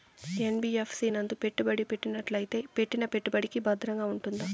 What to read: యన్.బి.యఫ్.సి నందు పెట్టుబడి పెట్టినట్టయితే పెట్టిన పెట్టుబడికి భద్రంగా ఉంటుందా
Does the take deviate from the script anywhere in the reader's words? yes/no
no